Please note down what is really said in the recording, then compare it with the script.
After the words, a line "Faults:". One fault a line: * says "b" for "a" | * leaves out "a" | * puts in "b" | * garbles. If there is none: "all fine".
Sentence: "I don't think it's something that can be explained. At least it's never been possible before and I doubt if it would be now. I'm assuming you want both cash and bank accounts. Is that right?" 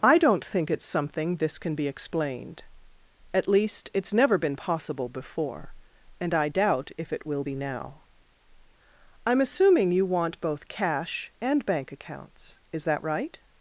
"I don't think it's something this can be explained. At least it's never been possible before and I doubt if it will be now. I'm assuming you want both cash and bank accounts. Is that right?"
Faults:
* says "this" for "that"
* says "will" for "would"